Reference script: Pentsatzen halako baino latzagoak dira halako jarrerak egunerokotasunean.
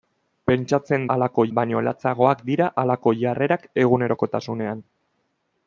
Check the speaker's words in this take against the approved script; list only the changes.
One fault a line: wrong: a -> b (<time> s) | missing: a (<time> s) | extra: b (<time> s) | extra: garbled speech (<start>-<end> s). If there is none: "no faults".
no faults